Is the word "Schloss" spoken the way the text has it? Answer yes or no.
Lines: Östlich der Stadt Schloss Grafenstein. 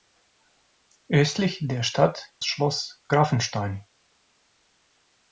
yes